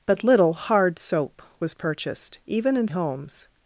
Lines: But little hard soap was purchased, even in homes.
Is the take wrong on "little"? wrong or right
right